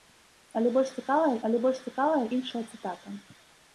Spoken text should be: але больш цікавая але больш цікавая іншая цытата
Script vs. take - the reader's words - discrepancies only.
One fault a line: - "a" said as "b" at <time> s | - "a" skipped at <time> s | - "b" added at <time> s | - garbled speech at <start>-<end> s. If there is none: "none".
none